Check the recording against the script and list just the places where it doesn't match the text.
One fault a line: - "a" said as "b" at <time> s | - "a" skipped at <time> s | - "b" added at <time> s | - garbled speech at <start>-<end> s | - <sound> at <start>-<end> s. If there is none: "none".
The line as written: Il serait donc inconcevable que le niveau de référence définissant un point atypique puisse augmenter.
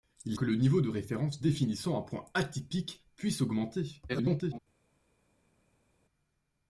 - "serait donc inconcevable" skipped at 0.4 s
- garbled speech at 4.1-4.6 s